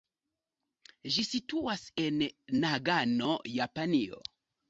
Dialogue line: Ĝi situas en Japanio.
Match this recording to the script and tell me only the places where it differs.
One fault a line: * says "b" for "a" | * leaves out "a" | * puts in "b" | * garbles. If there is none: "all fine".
* puts in "Nagano"